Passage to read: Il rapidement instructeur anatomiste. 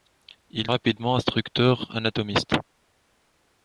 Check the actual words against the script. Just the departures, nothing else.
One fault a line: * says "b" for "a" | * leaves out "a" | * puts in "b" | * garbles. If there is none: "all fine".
all fine